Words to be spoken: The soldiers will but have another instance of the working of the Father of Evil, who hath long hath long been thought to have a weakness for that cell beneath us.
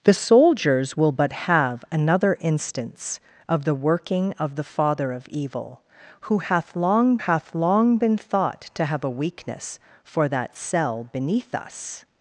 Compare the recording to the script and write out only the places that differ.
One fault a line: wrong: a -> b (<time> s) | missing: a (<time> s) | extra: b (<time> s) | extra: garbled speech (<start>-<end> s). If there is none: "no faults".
no faults